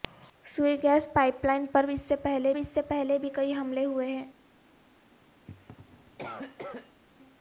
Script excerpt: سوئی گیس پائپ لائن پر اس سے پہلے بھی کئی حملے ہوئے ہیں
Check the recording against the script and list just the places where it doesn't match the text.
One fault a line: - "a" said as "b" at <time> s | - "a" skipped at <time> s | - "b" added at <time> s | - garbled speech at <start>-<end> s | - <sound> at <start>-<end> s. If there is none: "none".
- "اس سے پہلے" added at 2.5 s
- cough at 5.5-7.0 s